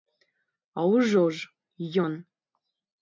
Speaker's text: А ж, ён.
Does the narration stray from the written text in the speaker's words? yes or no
yes